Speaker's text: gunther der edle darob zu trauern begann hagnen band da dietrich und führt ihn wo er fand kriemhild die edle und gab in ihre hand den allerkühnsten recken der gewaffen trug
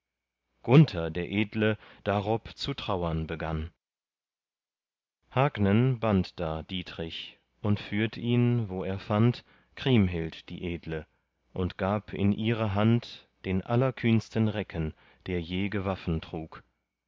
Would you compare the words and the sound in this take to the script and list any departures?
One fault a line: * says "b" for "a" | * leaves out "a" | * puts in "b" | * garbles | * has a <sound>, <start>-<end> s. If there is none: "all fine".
* puts in "je"